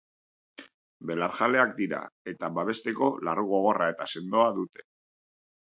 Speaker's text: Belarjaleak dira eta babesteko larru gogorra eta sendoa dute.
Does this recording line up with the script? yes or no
yes